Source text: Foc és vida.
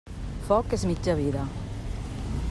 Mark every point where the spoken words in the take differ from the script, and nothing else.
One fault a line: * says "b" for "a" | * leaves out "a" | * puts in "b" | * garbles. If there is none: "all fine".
* puts in "mitja"